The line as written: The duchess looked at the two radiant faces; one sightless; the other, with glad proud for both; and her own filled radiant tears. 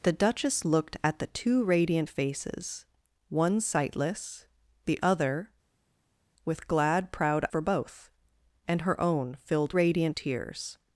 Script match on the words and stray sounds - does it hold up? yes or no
yes